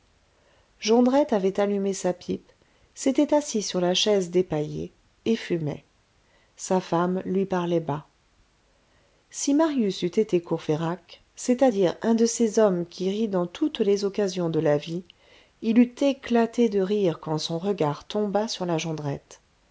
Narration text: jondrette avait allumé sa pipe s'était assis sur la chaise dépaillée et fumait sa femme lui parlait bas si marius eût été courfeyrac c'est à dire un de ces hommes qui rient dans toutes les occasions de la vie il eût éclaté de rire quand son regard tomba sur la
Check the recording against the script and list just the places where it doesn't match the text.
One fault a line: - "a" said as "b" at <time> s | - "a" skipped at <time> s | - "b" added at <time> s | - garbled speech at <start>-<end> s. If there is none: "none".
none